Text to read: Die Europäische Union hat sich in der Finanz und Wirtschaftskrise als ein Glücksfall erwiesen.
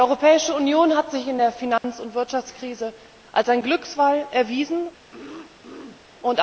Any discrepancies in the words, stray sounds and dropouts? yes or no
yes